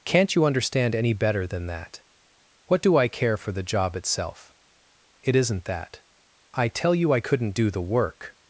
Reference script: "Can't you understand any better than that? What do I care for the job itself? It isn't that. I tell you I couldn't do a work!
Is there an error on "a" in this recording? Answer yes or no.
yes